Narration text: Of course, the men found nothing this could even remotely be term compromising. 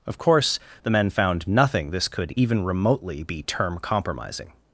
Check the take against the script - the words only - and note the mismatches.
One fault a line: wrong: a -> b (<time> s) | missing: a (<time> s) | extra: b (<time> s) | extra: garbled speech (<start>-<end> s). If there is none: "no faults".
no faults